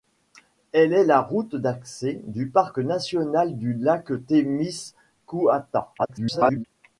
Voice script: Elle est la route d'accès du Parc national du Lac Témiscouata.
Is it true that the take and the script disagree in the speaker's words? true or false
true